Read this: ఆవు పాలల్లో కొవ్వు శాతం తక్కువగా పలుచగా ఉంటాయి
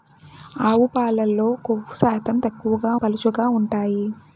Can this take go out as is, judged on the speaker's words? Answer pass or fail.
pass